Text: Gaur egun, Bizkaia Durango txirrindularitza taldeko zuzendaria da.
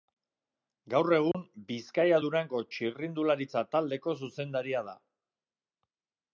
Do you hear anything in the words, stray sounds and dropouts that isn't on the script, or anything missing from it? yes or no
yes